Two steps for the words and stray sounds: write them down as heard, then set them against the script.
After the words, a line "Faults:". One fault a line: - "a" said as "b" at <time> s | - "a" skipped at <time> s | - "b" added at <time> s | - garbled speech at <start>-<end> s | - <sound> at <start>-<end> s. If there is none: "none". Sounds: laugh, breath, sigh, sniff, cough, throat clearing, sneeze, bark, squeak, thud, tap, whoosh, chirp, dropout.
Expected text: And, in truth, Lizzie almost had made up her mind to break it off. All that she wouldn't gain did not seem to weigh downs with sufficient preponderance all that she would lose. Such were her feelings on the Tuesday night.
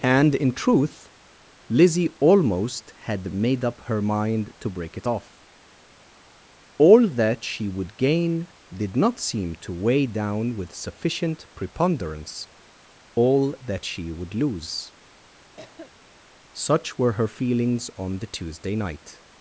And, in truth, Lizzie almost had made up her mind to break it off. All that she would gain did not seem to weigh down with sufficient preponderance all that she would lose. Such were her feelings on the Tuesday night.
Faults:
- "wouldn't" said as "would" at 7.7 s
- "downs" said as "down" at 10.1 s
- cough at 15.6-16.0 s